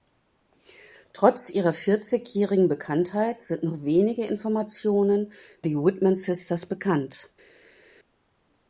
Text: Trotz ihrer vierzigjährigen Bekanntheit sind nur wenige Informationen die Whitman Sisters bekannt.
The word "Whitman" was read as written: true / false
true